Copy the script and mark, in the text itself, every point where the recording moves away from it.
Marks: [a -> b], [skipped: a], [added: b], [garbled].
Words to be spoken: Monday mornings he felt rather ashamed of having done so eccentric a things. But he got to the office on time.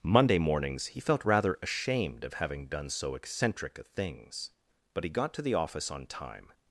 Monday mornings he felt rather ashamed of having done so eccentric a things. But he got to the office on time.